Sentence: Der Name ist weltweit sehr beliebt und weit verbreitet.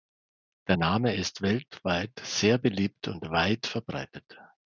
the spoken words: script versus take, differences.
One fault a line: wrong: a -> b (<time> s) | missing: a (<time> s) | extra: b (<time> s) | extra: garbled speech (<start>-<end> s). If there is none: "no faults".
no faults